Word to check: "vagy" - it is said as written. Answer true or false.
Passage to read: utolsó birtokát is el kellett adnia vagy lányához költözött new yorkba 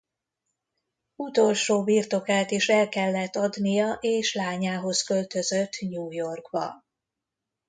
false